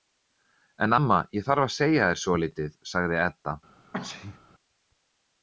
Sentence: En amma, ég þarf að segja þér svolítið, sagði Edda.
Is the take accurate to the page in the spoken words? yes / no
yes